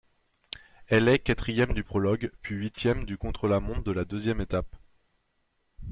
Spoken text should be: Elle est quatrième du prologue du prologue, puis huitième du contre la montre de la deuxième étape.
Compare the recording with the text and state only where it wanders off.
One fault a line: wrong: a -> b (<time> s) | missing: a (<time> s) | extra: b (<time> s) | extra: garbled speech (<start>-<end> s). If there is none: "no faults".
missing: du prologue (2.3 s)